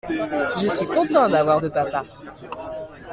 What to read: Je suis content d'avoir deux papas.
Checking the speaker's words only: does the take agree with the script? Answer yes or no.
yes